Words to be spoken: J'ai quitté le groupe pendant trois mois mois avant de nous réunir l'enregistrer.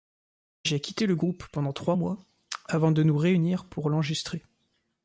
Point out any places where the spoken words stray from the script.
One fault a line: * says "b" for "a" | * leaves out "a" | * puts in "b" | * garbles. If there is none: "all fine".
* leaves out "mois"
* puts in "pour"